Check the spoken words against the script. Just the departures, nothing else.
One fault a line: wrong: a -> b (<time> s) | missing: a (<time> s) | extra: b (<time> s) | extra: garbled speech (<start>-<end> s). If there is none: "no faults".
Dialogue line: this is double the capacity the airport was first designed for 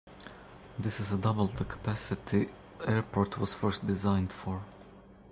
missing: the (2.5 s)